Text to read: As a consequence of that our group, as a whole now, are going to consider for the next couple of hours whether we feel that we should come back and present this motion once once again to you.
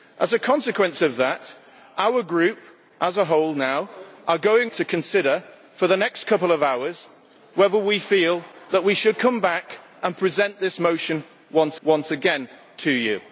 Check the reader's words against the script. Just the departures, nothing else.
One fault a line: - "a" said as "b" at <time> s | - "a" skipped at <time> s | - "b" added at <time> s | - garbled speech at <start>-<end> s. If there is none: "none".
none